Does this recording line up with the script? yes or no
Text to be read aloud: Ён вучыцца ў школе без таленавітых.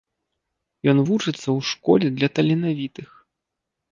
no